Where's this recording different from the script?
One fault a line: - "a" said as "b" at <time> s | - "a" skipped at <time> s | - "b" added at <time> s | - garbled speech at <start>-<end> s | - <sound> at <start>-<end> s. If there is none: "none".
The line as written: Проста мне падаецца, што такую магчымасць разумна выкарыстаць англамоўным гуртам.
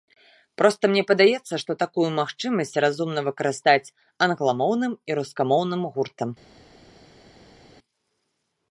- "і рускамоўным" added at 5.1 s